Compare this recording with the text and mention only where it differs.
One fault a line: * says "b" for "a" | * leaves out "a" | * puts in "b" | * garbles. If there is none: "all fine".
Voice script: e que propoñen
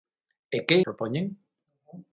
all fine